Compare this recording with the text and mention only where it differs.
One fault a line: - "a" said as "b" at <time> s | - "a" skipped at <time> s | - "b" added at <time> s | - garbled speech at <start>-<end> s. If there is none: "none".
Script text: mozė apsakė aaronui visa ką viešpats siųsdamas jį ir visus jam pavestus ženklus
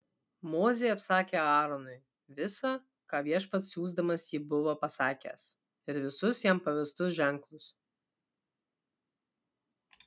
- "buvo pasakęs" added at 4.5 s